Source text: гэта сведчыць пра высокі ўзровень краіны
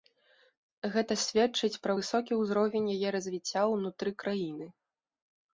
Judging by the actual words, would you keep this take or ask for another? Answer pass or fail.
fail